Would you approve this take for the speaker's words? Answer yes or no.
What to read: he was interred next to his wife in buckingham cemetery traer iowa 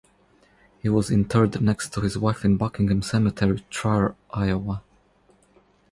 yes